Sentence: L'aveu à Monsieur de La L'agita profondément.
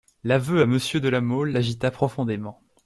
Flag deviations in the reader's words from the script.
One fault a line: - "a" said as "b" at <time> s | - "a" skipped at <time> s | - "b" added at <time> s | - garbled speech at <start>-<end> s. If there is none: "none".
- "Mole" added at 1.2 s